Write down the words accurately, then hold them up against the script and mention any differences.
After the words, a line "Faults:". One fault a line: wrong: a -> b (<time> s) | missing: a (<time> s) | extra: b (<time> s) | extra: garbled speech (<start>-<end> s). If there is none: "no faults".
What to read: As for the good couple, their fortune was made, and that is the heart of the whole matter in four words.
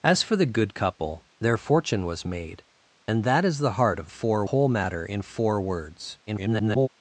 As for the good couple, their fortune was made, and that is the heart of four whole matter in four words. [garbled]
Faults:
wrong: the -> four (4.1 s)
extra: garbled speech (6.3-6.9 s)